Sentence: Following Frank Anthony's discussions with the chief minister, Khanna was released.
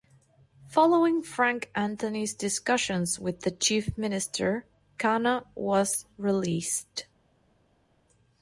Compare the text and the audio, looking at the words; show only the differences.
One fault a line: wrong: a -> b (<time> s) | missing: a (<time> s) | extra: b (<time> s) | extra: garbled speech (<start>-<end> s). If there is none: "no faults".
no faults